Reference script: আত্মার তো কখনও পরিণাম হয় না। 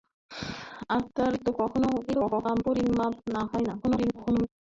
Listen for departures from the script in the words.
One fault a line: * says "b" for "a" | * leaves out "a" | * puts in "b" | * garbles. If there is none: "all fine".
* garbles
* garbles